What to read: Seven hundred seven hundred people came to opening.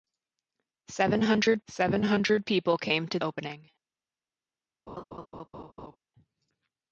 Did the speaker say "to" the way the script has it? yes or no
yes